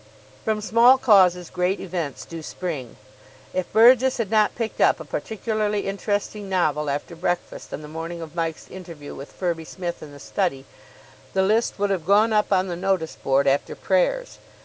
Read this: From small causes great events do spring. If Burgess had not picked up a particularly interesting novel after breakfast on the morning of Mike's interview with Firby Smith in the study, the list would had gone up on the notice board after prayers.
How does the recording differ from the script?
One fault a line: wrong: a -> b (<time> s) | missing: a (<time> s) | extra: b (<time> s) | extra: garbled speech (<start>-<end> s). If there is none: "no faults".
wrong: had -> have (11.9 s)